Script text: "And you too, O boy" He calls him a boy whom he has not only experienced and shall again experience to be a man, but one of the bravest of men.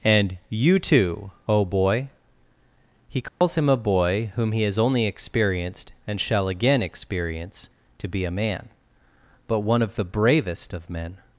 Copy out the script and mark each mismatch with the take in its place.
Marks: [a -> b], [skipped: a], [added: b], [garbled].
"And you too, O boy" He calls him a boy whom he has [skipped: not] only experienced and shall again experience to be a man, but one of the bravest of men.